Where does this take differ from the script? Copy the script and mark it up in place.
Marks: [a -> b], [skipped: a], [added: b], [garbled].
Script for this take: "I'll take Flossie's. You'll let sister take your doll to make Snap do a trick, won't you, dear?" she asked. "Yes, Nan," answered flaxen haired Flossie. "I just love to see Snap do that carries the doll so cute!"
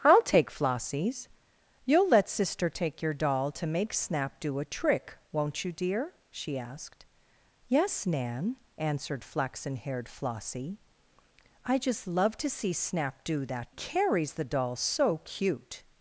"I'll take Flossie's. You'll let sister take your doll to make Snap do a trick, won't you, dear?" she asked. "Yes, Nan," answered flaxen haired Flossie. "I just love to see Snap do that carries the doll so cute!"